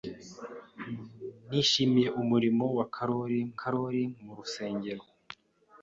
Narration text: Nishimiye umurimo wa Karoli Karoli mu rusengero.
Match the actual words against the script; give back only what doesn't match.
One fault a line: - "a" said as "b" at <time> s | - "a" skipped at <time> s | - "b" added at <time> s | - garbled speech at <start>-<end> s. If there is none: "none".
none